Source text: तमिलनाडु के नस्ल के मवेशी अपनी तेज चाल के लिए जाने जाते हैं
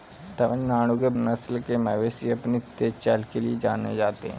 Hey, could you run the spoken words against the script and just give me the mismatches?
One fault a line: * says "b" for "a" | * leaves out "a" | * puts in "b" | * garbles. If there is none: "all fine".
all fine